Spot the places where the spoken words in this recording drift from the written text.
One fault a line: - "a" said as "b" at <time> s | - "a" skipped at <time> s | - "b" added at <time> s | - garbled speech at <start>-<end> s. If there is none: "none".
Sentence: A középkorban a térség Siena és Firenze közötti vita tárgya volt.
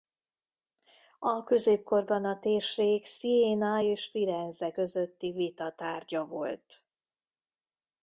none